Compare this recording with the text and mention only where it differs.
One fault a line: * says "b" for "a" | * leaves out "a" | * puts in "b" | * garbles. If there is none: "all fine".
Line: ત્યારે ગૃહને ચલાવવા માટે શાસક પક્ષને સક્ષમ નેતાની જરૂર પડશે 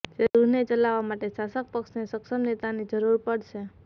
all fine